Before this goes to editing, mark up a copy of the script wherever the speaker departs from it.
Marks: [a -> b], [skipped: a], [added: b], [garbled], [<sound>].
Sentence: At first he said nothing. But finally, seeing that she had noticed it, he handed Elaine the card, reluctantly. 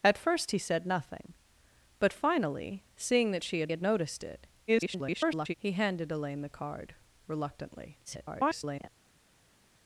At first he said nothing. But finally, seeing that she had [added: had] noticed it, [garbled] he handed Elaine the card, reluctantly. [garbled]